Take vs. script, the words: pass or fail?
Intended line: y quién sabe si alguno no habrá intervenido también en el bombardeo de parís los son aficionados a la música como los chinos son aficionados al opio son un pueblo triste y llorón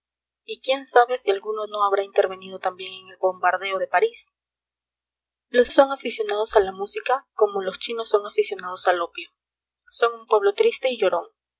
pass